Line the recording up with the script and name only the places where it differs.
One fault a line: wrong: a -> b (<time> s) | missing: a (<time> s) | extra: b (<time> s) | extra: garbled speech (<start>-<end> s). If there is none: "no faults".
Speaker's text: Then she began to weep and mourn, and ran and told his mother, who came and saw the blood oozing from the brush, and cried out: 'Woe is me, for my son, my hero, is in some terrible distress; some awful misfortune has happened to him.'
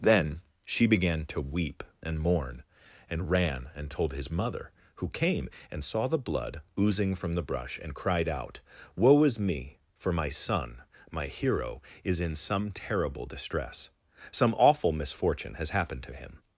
no faults